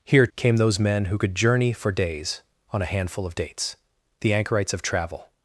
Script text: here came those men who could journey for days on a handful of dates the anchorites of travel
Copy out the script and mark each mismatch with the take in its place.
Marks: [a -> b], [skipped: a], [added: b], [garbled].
here came those men who could journey for days on a handful of dates the anchorites of travel